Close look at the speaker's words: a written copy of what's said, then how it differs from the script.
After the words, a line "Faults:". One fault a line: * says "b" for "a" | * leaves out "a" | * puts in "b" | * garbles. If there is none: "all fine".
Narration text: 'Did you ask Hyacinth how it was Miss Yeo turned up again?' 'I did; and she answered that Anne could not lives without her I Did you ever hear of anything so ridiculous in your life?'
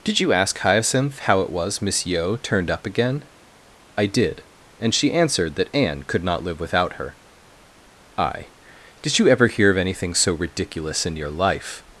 'Did you ask Hyacinth how it was Miss Yeo turned up again?' 'I did; and she answered that Anne could not live without her I Did you ever hear of anything so ridiculous in your life?'
Faults:
* says "live" for "lives"